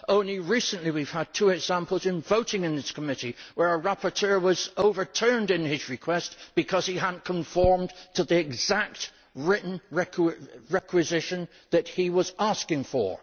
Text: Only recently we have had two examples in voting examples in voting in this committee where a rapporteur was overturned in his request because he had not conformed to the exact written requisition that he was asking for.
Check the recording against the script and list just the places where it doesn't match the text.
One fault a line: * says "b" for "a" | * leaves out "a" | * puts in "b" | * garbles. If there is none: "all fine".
* leaves out "examples in voting"